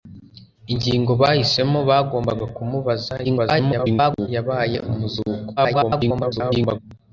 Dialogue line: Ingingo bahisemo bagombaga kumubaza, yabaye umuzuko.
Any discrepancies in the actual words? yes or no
yes